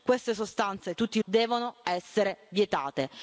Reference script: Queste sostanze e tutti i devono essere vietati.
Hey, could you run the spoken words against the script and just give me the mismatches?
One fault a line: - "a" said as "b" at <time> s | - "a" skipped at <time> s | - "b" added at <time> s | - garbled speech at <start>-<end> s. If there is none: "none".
none